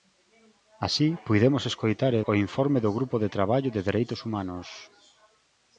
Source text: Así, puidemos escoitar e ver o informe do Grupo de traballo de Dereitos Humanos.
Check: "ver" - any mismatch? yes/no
yes